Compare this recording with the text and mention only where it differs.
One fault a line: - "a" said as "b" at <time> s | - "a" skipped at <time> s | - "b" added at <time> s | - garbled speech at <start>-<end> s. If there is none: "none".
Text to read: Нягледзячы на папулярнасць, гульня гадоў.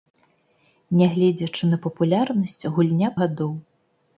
none